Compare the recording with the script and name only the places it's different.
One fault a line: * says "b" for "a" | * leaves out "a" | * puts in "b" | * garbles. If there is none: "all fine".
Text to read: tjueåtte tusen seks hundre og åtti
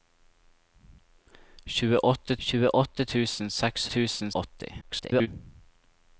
* puts in "tjueåtte"
* says "tusen" for "hundre"
* garbles